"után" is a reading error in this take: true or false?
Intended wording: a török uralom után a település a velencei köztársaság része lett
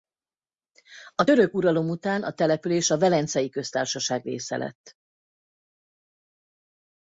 false